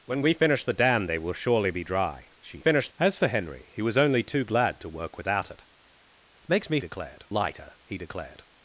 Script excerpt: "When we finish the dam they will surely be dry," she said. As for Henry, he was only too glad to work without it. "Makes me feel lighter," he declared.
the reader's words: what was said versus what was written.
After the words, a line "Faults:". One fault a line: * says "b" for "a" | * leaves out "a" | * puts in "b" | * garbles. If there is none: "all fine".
"When we finish the dam they will surely be dry," she finish. As for Henry, he was only too glad to work without it. "Makes me declared lighter," he declared.
Faults:
* says "finish" for "said"
* says "declared" for "feel"